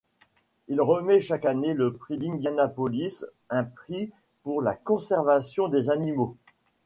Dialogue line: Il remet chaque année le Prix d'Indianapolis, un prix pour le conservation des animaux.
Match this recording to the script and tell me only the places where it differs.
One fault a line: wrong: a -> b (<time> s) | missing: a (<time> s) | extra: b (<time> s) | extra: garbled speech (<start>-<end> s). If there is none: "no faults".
wrong: le -> la (4.6 s)